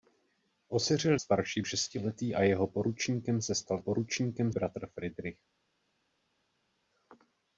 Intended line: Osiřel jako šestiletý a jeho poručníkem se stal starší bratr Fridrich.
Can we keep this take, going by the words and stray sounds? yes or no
no